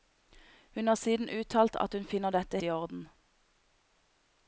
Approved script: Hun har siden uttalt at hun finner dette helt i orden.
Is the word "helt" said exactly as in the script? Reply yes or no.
no